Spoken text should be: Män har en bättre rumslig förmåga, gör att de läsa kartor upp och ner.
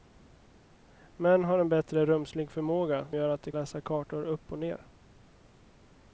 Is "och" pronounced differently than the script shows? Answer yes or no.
no